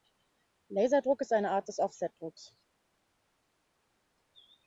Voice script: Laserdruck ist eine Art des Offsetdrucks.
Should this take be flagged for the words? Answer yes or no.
no